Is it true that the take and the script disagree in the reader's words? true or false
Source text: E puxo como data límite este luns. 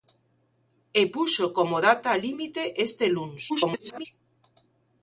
true